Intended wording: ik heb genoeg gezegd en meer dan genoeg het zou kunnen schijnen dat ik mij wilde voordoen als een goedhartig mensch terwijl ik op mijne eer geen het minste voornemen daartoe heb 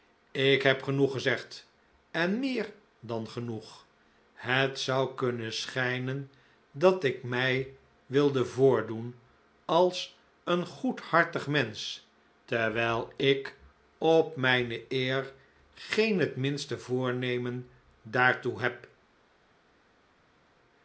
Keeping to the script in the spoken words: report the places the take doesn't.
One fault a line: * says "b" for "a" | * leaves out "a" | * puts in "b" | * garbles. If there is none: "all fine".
all fine